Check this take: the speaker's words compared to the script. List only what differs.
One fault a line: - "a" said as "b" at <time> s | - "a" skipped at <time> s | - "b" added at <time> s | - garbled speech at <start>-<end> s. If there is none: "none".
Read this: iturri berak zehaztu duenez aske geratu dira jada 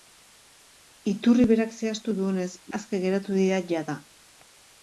none